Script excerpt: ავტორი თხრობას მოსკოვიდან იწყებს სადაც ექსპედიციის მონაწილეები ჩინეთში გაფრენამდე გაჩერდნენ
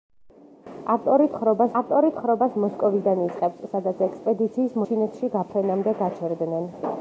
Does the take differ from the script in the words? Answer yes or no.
yes